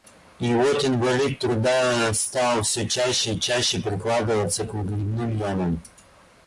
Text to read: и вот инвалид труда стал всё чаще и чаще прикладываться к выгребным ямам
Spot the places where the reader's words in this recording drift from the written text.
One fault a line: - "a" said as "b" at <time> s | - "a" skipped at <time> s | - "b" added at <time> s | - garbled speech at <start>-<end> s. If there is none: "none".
none